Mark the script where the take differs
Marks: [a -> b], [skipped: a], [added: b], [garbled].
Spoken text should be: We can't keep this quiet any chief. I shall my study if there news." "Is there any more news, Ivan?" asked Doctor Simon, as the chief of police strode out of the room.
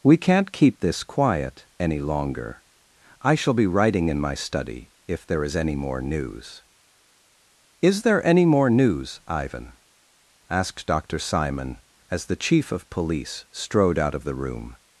We can't keep this quiet any [chief. -> longer] I shall [added: be writing in] my study if there [added: is any more] news." "Is there any more news, Ivan?" asked Doctor Simon, as the chief of police strode out of the room.